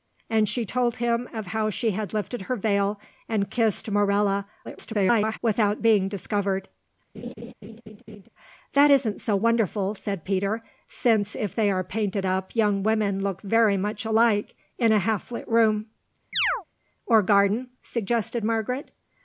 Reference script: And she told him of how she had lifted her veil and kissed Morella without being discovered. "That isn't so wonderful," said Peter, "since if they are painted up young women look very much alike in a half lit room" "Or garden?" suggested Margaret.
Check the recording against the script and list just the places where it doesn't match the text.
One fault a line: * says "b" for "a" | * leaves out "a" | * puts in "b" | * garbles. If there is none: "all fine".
* garbles